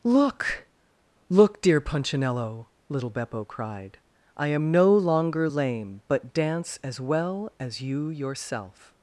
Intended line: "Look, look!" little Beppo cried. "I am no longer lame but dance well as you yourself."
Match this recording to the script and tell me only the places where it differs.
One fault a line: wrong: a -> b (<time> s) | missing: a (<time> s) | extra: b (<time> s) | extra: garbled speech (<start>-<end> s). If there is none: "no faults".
extra: dear Punchinello (1.6 s)
extra: as (6.8 s)